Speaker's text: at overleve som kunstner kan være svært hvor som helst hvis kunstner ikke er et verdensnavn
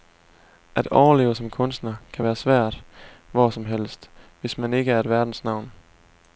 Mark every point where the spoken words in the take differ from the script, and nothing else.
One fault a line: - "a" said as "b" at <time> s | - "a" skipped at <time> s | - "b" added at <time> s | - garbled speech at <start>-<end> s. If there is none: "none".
- "kunstner" said as "man" at 4.6 s